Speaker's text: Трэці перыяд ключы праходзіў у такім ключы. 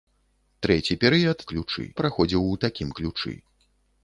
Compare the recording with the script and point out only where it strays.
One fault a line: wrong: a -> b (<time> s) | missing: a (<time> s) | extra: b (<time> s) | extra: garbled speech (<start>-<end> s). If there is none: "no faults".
no faults